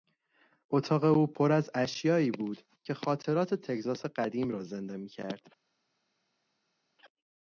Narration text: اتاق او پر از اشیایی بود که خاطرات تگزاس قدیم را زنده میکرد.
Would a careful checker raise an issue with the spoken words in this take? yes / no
no